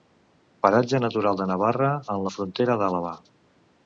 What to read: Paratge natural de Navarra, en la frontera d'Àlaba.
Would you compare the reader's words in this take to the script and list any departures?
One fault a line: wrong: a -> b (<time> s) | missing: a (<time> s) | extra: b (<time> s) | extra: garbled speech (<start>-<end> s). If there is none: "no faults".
no faults